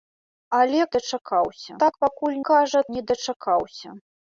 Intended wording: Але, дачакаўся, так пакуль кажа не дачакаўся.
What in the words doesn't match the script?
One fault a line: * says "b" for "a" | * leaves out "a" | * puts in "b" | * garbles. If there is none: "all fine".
all fine